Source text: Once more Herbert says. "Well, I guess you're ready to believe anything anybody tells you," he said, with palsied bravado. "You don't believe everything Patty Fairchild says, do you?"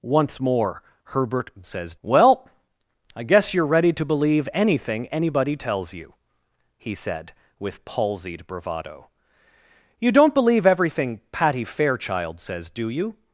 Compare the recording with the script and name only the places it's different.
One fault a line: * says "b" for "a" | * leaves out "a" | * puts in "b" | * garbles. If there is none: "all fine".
all fine